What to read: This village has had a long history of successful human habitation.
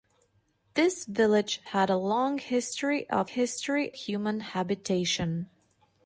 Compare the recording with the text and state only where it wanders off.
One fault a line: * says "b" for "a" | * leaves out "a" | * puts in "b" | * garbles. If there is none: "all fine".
* leaves out "has"
* says "history" for "successful"